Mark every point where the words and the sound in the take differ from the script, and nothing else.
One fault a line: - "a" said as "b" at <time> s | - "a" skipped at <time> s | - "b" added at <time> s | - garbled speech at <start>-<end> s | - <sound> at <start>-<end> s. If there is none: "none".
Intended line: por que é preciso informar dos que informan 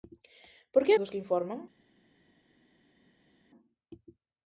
- "é preciso informar" skipped at 0.9 s